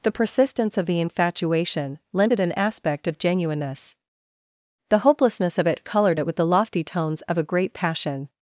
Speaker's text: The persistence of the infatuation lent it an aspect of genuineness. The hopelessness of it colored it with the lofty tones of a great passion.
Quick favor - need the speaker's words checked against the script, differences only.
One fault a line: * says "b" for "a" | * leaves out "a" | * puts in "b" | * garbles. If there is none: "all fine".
all fine